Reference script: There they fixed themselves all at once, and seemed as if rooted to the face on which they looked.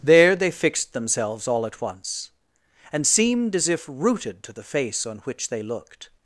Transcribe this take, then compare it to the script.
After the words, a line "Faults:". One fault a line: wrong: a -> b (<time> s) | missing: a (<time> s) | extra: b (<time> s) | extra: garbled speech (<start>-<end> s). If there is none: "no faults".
There they fixed themselves all at once, and seemed as if rooted to the face on which they looked.
Faults:
no faults